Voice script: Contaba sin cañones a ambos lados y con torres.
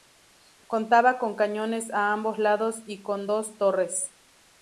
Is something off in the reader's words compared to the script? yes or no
yes